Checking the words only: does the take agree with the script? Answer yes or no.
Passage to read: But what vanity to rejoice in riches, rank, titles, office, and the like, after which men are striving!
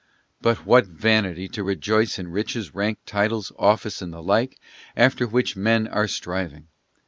yes